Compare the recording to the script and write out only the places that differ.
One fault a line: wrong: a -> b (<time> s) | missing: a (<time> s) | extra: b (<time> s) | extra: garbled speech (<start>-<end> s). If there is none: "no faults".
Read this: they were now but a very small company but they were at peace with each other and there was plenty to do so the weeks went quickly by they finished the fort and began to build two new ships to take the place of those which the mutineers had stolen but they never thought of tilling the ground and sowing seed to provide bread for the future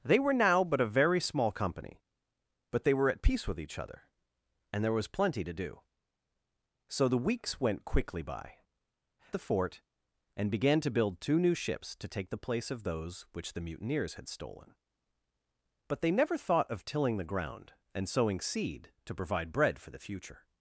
missing: they finished (8.6 s)